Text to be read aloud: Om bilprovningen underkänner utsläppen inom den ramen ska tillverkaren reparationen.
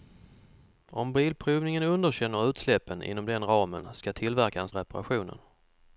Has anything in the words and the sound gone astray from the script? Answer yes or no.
no